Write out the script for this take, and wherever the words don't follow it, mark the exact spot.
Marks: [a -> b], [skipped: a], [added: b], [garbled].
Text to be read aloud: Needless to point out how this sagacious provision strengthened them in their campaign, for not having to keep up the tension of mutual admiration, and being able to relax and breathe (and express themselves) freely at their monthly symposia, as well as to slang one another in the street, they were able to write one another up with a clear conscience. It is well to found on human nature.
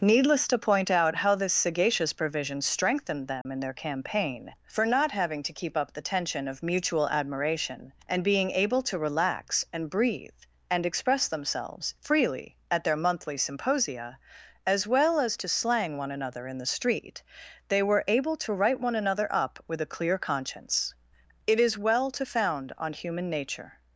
Needless to point out how this sagacious provision strengthened them in their campaign, for not having to keep up the tension of mutual admiration, and being able to relax and breathe (and express themselves) freely at their monthly symposia, as well as to slang one another in the street, they were able to write one another up with a clear conscience. It is well to found on human nature.